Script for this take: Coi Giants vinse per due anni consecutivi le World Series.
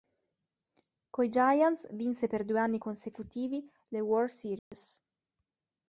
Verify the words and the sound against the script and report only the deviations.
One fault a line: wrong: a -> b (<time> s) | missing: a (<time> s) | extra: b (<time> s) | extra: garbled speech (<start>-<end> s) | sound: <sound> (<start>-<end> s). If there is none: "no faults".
sound: dropout (4.6-4.7 s)